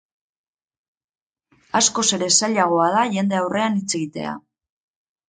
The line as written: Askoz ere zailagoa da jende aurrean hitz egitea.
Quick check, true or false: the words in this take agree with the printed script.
true